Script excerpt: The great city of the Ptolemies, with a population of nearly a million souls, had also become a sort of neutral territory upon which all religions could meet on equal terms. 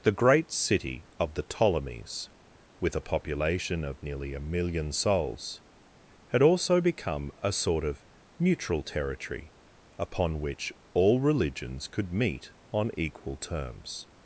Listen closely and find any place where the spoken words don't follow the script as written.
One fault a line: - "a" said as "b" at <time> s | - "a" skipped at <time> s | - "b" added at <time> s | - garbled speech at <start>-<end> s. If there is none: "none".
none